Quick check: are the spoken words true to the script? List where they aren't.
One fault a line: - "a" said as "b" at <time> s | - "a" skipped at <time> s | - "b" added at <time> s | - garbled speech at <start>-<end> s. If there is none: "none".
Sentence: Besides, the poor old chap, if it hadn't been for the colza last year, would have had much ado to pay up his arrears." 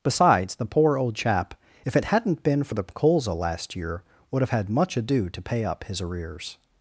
none